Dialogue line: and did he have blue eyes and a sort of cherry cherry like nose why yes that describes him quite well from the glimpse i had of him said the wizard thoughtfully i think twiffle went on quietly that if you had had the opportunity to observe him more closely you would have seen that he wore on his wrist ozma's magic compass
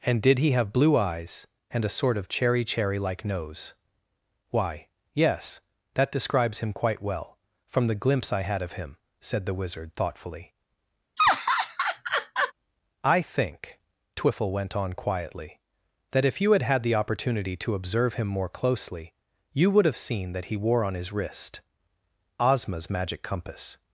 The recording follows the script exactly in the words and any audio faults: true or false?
false